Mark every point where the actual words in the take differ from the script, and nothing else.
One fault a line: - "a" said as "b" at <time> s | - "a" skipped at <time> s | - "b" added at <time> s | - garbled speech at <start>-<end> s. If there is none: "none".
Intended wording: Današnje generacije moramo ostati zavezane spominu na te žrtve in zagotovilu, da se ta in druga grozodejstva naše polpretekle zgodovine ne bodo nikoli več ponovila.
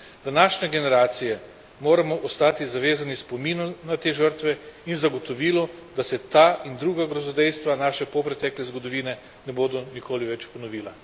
none